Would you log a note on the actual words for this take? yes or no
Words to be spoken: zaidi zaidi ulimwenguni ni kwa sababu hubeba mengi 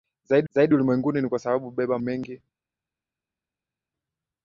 no